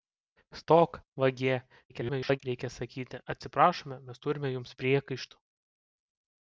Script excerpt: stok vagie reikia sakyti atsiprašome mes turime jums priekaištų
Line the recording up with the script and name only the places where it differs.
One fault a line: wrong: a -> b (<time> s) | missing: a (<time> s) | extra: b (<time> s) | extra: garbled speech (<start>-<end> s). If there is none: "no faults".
extra: garbled speech (1.9-2.4 s)